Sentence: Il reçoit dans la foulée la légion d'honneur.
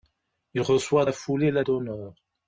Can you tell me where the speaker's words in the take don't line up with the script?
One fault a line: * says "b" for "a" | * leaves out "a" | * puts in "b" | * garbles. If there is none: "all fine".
* leaves out "dans"
* leaves out "légion"